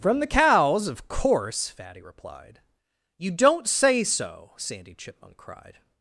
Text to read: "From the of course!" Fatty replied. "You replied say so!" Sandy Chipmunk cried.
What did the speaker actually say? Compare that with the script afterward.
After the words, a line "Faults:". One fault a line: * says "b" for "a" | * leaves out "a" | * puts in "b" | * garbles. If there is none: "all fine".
"From the cows, of course!" Fatty replied. "You don't say so!" Sandy Chipmunk cried.
Faults:
* puts in "cows"
* says "don't" for "replied"